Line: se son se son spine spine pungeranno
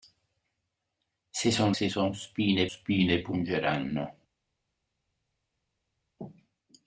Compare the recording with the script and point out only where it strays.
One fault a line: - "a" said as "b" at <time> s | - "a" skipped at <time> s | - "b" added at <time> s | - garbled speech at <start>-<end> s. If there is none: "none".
none